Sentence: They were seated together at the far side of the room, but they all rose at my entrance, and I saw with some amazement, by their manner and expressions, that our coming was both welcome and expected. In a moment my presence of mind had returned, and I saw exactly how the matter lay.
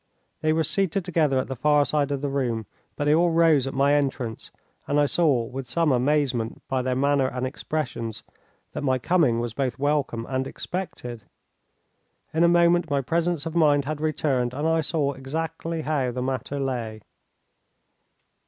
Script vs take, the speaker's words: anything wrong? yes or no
yes